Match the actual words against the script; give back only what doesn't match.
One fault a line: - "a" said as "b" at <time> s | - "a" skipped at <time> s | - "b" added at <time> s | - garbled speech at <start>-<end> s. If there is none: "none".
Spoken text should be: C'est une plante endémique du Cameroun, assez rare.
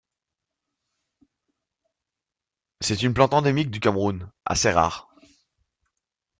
none